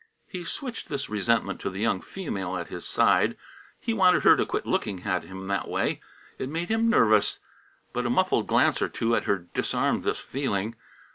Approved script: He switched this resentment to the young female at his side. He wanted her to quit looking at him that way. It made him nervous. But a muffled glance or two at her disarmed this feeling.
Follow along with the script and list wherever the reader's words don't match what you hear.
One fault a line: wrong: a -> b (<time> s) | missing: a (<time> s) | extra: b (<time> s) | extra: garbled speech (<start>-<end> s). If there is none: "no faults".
no faults